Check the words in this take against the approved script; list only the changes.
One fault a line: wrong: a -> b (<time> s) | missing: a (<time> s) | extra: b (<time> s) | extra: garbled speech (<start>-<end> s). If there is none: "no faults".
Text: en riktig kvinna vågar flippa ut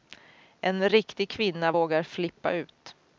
no faults